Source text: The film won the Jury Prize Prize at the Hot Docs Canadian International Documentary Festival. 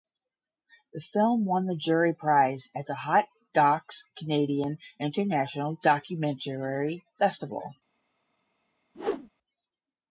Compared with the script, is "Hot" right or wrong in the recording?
right